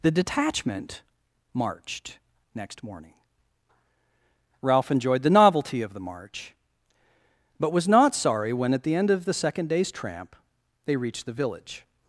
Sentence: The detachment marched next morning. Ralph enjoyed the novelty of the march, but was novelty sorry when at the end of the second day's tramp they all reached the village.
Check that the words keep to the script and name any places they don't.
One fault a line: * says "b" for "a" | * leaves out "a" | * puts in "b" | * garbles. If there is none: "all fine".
* says "not" for "novelty"
* leaves out "all"